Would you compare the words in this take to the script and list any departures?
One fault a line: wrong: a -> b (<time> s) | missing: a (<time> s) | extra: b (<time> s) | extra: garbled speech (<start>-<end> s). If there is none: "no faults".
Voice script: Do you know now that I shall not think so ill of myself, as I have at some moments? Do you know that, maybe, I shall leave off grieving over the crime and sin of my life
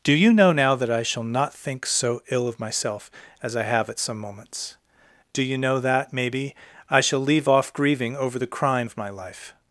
missing: and sin (8.9 s)